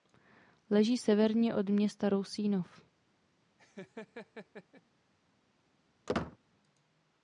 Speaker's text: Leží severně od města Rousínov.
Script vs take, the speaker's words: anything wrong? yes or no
no